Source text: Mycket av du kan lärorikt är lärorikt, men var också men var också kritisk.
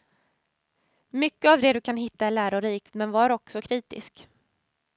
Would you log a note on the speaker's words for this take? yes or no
yes